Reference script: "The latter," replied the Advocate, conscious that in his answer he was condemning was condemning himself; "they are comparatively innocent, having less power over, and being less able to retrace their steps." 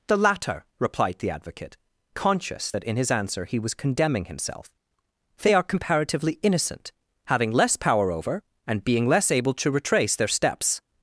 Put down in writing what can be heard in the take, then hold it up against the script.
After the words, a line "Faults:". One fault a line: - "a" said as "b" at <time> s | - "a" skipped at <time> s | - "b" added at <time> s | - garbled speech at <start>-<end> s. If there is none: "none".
"The latter," replied the Advocate, conscious that in his answer he was condemning himself; "they are comparatively innocent, having less power over, and being less able to retrace their steps."
Faults:
- "was condemning" skipped at 4.3 s